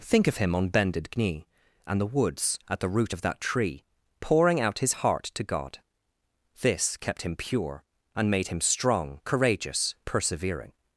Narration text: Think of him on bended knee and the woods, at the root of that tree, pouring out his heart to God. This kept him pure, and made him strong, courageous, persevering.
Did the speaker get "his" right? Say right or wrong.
right